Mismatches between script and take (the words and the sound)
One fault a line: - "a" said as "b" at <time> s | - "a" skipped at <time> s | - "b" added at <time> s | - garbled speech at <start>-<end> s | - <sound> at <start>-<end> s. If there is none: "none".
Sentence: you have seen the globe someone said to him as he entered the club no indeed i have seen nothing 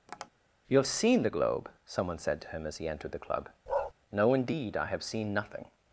- tap at 0.1-0.3 s
- bark at 3.7-3.9 s